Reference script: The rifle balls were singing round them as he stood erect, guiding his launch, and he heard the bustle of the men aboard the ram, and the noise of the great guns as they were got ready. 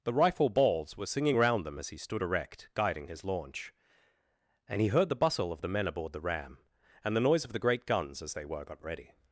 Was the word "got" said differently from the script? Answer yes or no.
no